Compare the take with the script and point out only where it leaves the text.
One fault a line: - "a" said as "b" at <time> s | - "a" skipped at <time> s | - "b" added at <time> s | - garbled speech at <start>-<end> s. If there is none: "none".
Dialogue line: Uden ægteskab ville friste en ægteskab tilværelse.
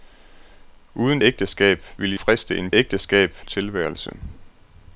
none